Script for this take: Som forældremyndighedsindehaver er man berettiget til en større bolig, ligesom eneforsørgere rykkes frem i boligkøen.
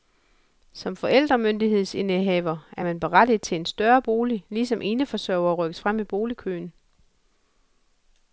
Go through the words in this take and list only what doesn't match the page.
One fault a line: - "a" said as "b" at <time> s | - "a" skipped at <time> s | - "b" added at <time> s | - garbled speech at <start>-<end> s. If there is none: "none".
none